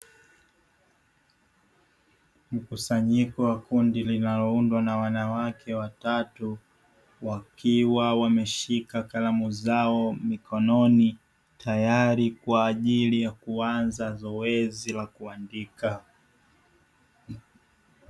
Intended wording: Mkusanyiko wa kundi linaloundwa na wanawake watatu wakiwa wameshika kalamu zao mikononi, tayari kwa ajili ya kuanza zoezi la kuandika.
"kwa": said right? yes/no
yes